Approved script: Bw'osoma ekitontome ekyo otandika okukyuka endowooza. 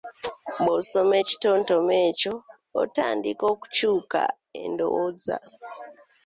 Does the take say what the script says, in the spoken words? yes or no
yes